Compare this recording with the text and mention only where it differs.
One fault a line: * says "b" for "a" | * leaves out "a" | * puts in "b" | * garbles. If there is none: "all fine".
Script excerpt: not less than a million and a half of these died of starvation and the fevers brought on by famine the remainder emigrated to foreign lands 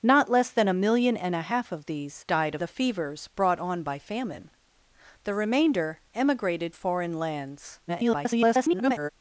* leaves out "starvation and"
* leaves out "to"
* garbles